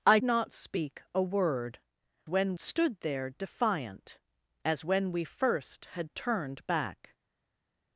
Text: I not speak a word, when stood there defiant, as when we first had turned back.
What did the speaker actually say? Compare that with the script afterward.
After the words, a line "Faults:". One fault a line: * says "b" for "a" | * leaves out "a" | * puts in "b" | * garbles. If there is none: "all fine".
I not speak a word, when stood there defiant, as when we first had turned back.
Faults:
all fine